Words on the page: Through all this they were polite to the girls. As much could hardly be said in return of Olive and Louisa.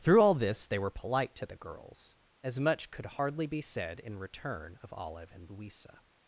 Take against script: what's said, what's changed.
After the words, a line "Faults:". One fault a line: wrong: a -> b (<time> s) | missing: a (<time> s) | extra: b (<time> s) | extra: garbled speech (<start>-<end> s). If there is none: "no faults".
Through all this they were polite to the girls. As much could hardly be said in return of Olive and Louisa.
Faults:
no faults